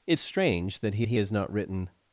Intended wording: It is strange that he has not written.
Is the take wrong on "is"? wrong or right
wrong